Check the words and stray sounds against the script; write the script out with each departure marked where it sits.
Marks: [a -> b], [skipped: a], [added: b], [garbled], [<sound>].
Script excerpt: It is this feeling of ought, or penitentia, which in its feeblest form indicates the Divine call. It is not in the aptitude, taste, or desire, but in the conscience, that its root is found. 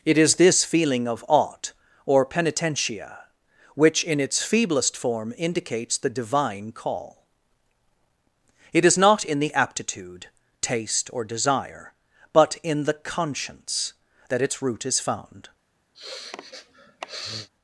It is this feeling of ought, or penitentia, which in its feeblest form indicates the Divine call. It is not in the aptitude, taste, or desire, but in the conscience, that its root is found. [sniff]